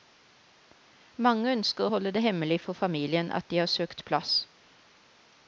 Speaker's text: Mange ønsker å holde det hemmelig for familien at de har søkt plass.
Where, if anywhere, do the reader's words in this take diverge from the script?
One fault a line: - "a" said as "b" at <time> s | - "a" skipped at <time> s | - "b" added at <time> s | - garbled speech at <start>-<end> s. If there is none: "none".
none